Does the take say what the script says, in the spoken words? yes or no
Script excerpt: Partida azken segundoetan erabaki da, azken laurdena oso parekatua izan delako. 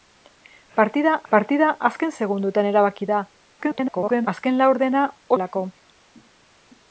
no